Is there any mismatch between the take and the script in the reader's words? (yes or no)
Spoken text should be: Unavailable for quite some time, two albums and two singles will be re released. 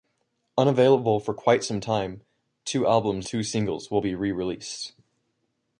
yes